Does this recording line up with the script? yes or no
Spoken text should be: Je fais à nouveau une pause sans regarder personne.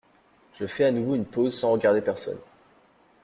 yes